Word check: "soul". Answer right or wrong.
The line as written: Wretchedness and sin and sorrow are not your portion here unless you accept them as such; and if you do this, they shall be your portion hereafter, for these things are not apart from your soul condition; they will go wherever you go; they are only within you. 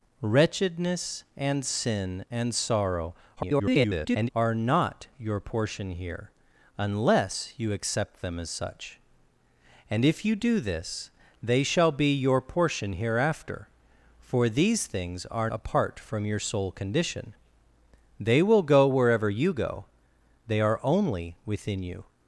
right